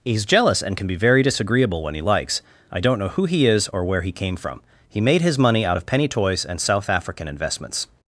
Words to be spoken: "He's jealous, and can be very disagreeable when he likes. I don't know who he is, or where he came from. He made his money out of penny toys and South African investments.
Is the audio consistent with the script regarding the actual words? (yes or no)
yes